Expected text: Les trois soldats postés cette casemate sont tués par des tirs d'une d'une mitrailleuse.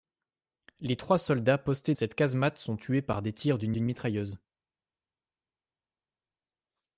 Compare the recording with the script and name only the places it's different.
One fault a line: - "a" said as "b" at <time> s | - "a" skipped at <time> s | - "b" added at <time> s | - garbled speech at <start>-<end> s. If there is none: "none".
none